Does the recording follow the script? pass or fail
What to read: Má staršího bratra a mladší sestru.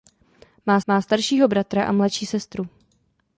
fail